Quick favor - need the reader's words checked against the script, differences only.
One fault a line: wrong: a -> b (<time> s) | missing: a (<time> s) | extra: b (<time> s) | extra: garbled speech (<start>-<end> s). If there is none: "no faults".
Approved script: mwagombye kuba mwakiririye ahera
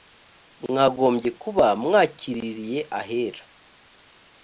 no faults